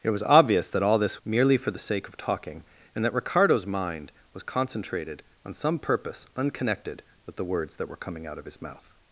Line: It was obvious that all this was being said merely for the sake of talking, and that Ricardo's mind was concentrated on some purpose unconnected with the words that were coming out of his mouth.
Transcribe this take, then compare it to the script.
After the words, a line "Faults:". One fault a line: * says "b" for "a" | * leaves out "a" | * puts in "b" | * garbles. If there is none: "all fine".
It was obvious that all this merely for the sake of talking, and that Ricardo's mind was concentrated on some purpose unconnected with the words that were coming out of his mouth.
Faults:
* leaves out "was being said"